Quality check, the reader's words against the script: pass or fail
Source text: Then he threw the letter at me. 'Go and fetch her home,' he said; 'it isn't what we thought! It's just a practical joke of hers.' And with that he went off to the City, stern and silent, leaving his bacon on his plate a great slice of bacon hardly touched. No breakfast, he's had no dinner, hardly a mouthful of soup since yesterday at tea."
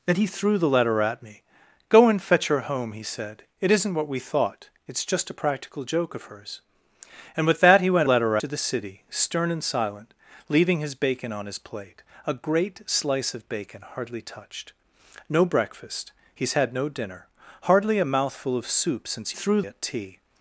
fail